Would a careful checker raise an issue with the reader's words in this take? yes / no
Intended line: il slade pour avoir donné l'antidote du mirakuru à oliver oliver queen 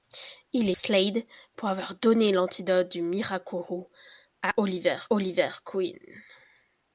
no